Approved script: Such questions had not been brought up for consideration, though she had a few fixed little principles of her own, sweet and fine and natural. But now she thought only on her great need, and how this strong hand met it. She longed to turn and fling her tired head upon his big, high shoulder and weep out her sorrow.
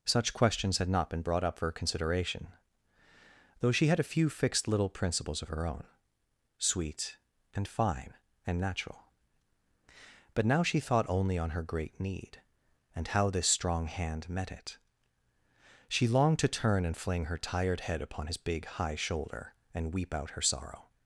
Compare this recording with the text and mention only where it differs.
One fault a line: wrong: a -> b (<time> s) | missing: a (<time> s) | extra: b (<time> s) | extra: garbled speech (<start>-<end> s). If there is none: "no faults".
no faults